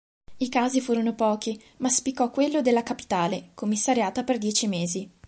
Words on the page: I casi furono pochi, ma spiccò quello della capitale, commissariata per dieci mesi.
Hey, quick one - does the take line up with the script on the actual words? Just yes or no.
yes